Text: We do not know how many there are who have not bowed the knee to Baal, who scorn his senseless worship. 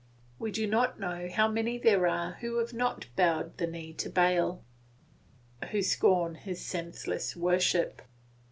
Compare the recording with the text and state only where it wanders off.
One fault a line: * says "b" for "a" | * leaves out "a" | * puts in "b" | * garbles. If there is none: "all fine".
all fine